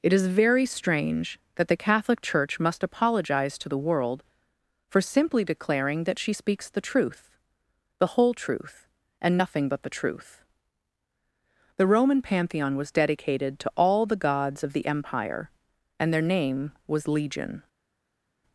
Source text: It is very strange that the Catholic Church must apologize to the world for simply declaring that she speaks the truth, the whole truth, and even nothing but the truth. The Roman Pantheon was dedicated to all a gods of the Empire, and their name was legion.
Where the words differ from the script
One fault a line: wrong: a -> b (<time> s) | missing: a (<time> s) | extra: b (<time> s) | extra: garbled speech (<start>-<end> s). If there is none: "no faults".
missing: even (9.4 s)
wrong: a -> the (14.0 s)